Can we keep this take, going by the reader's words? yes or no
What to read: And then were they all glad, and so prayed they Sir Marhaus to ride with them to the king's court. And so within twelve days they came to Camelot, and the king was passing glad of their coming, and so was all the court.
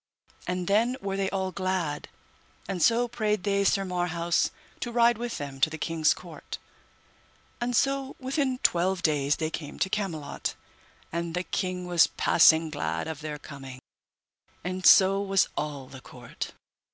yes